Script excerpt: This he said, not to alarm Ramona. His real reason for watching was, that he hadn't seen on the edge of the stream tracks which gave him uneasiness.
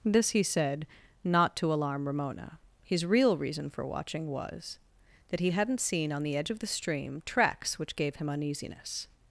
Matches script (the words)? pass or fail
pass